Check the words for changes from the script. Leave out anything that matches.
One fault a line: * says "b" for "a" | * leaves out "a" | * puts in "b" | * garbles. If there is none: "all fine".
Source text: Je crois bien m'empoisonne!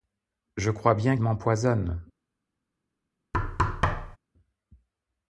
all fine